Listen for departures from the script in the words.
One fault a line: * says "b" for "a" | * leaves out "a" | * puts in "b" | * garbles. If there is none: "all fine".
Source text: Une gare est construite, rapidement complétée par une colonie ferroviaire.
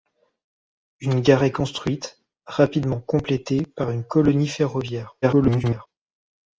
* garbles